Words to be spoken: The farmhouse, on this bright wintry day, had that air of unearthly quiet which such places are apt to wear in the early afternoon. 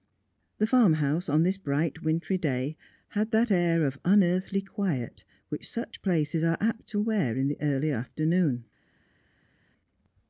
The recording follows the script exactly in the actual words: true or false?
true